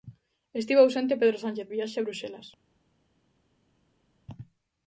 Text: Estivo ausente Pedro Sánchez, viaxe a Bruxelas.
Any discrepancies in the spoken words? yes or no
no